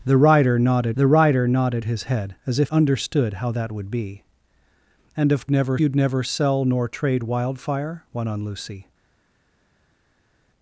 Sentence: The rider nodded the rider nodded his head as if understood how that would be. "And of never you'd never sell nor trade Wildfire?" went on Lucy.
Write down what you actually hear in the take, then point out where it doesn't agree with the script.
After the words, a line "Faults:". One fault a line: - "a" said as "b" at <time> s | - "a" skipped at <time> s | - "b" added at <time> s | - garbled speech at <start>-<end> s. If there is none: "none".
The rider nodded the rider nodded his head as if understood how that would be. "And of never you'd never sell nor trade Wildfire?" went on Lucy.
Faults:
none